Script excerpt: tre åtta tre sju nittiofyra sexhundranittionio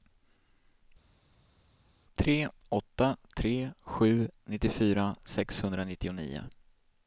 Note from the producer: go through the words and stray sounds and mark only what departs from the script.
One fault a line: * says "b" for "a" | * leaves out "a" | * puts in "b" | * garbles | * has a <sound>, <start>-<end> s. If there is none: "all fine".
all fine